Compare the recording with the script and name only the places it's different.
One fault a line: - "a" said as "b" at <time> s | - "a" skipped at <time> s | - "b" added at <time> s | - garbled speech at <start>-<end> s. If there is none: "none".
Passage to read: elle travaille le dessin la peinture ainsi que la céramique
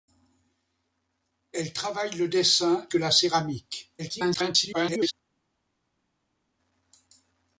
- "la peinture ainsi" skipped at 2.9 s
- garbled speech at 4.0-5.1 s